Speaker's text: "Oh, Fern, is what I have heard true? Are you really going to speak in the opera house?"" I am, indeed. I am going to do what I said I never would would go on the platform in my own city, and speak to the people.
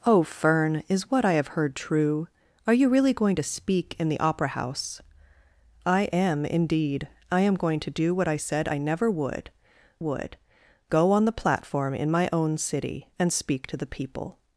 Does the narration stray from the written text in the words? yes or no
no